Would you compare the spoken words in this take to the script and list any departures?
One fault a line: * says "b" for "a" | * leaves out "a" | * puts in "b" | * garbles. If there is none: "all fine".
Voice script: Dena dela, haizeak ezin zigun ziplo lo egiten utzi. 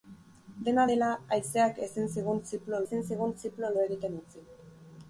* puts in "ezin zigun ziplo"